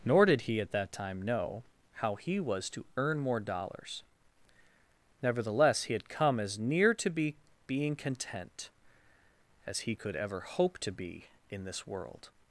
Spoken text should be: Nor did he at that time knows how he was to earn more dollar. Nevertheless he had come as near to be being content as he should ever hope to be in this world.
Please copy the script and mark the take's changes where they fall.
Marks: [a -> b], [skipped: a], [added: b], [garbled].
Nor did he at that time [knows -> know] how he was to earn more [dollar. -> dollars] Nevertheless he had come as near to be being content as he [should -> could] ever hope to be in this world.